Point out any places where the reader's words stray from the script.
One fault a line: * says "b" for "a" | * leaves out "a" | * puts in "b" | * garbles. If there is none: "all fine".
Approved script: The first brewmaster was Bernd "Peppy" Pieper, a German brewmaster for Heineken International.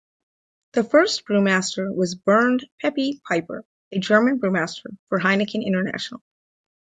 all fine